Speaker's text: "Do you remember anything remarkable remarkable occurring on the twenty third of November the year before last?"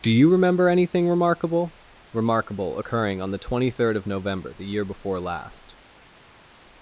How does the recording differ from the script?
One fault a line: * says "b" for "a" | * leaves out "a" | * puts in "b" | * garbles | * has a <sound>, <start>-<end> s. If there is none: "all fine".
all fine